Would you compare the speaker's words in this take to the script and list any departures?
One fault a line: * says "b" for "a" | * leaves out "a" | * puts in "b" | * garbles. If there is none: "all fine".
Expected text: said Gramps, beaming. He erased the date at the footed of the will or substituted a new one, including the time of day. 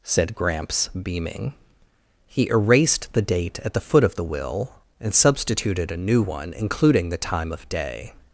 * says "foot" for "footed"
* says "and" for "or"